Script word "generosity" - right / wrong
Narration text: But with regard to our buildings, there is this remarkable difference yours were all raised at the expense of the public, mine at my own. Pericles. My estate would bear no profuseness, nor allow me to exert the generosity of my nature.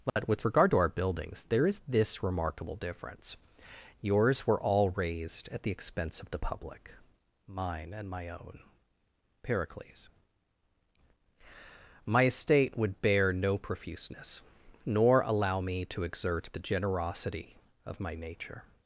right